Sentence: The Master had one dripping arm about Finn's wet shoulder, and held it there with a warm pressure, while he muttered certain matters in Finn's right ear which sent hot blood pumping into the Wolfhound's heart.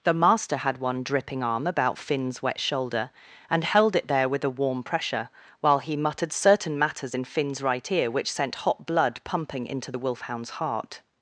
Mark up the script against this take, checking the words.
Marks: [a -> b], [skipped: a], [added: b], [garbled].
The Master had one dripping arm about Finn's wet shoulder, and held it there with a warm pressure, while he muttered certain matters in Finn's right ear which sent hot blood pumping into the Wolfhound's heart.